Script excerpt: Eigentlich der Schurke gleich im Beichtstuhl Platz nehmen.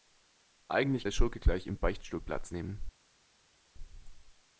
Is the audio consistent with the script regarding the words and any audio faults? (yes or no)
yes